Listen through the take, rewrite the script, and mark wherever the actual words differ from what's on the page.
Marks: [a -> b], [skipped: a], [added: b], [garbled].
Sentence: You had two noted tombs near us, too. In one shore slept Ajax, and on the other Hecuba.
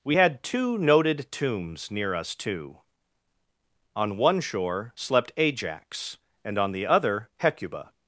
[You -> We] had two noted tombs near us, too. [In -> On] one shore slept Ajax, and on the other Hecuba.